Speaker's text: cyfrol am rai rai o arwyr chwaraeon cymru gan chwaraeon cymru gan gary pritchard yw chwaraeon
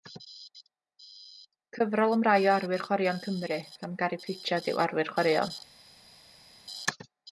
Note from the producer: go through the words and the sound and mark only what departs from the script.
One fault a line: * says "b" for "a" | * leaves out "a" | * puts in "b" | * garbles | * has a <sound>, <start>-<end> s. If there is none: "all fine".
* leaves out "rai"
* leaves out "chwaraeon cymru gan"
* puts in "arwyr"